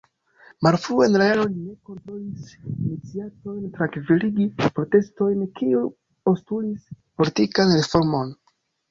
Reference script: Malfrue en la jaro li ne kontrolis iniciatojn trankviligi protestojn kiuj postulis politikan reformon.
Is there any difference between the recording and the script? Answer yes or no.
no